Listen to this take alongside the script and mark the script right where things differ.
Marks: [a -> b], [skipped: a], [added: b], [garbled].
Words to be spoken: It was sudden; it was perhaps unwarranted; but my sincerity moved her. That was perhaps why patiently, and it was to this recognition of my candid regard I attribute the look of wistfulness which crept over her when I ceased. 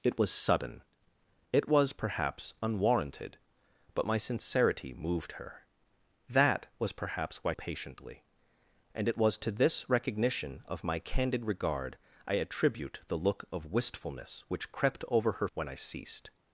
It was sudden; it was perhaps unwarranted; but my sincerity moved her. That was perhaps why patiently, and it was to this recognition of my candid regard I attribute the look of wistfulness which crept over her when I ceased.